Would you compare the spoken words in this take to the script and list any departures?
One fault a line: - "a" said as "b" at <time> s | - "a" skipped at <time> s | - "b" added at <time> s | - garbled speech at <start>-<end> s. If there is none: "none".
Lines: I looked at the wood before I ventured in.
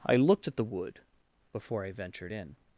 none